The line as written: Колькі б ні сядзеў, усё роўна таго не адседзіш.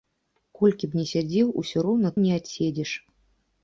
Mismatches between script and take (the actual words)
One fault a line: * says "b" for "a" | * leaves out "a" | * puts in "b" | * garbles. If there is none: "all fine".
* leaves out "таго"